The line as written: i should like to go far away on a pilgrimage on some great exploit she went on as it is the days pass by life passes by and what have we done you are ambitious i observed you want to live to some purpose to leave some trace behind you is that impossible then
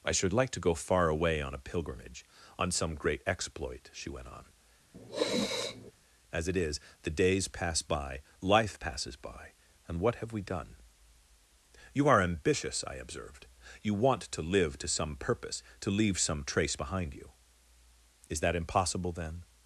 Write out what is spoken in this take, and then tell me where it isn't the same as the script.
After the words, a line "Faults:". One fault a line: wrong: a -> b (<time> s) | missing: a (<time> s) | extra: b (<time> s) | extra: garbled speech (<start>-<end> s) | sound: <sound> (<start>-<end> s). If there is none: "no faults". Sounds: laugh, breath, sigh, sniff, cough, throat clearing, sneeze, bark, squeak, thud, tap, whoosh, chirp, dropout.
i should like to go far away on a pilgrimage on some great exploit she went on as it is the days pass by life passes by and what have we done you are ambitious i observed you want to live to some purpose to leave some trace behind you is that impossible then
Faults:
sound: sniff (4.9-5.9 s)